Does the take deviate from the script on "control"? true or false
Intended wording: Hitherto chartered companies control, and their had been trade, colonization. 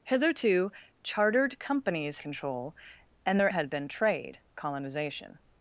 false